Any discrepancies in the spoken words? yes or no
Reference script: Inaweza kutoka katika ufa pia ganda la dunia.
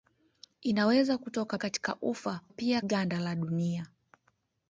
no